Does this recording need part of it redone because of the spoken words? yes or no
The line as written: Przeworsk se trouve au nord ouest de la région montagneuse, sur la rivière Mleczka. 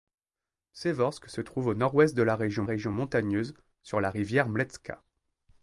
yes